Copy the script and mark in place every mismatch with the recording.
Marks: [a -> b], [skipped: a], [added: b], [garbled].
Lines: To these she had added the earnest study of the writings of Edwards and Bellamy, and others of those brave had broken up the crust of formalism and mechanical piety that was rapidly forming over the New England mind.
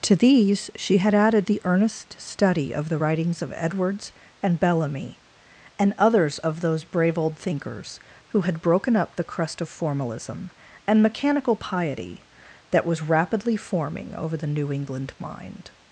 To these she had added the earnest study of the writings of Edwards and Bellamy, and others of those brave [added: old thinkers who] had broken up the crust of formalism and mechanical piety that was rapidly forming over the New England mind.